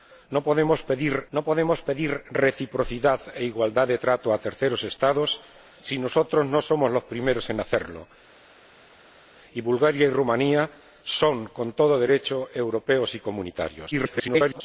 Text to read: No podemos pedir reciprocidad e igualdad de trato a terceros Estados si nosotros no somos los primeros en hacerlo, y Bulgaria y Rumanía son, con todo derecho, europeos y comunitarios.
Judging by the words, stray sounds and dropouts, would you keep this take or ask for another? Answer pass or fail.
fail